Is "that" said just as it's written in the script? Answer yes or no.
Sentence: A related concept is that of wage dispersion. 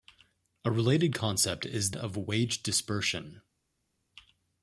no